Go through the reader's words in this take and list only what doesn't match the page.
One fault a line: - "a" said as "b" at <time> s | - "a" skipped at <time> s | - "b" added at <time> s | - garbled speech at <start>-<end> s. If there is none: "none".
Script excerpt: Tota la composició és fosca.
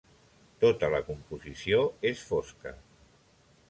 none